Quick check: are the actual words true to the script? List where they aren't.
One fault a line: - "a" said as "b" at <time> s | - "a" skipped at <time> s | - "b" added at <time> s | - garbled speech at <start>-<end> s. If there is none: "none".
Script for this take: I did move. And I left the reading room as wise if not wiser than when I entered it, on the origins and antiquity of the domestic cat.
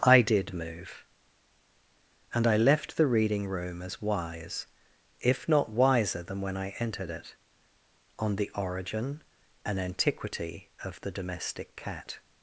- "origins" said as "origin" at 8.5 s